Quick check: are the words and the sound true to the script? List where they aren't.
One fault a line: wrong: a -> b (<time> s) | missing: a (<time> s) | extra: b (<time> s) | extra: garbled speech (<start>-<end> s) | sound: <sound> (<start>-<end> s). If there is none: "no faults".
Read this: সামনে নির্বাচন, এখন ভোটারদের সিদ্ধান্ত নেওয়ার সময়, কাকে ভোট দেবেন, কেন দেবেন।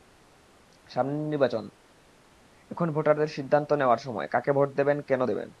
no faults